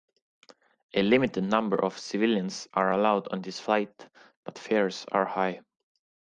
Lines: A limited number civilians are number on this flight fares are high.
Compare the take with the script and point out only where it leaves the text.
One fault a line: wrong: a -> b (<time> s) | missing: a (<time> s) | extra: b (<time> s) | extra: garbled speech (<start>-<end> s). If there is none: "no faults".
extra: of (1.8 s)
wrong: number -> allowed (2.9 s)
extra: but (4.4 s)